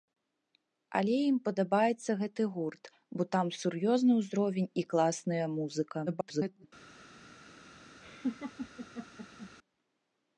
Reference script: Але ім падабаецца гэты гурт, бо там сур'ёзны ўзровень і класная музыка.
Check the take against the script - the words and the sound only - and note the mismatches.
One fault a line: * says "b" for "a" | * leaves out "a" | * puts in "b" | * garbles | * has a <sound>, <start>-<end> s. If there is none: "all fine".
* garbles
* has a laugh, 8.0-9.5 s